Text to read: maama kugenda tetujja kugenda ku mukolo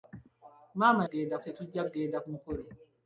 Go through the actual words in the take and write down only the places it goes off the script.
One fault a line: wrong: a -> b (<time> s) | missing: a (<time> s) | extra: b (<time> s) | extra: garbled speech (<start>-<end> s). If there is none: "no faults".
no faults